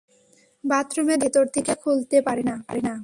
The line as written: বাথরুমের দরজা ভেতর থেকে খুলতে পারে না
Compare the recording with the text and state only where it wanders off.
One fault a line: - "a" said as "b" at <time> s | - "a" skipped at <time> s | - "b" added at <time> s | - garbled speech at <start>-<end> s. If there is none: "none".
none